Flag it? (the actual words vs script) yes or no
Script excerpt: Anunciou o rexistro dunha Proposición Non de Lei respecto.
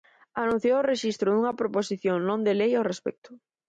yes